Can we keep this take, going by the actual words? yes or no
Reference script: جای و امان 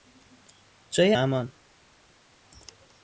yes